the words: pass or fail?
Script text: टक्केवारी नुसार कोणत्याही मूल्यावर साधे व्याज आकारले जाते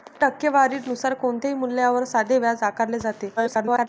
fail